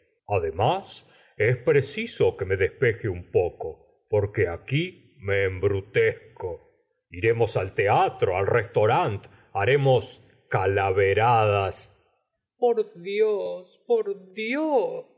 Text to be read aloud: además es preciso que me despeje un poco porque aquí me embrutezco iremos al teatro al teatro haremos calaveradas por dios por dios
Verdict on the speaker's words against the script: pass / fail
fail